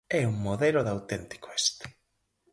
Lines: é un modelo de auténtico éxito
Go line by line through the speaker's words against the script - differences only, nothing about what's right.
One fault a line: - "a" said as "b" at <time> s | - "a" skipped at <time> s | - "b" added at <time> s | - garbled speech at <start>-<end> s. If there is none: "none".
none